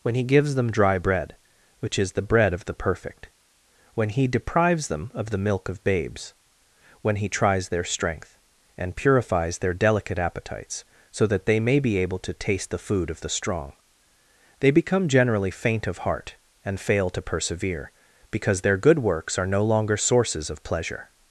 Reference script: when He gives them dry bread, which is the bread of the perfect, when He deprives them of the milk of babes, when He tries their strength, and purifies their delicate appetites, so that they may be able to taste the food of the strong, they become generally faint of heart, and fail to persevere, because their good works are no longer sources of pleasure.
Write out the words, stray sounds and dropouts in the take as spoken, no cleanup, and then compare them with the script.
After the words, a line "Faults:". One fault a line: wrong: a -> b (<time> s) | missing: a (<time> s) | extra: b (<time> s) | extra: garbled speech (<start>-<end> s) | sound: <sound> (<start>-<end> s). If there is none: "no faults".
when He gives them dry bread, which is the bread of the perfect, when He deprives them of the milk of babes, when He tries their strength, and purifies their delicate appetites, so that they may be able to taste the food of the strong, they become generally faint of heart, and fail to persevere, because their good works are no longer sources of pleasure.
Faults:
no faults